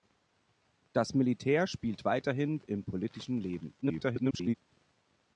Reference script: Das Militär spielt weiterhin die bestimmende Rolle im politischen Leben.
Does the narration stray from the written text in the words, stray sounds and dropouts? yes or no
yes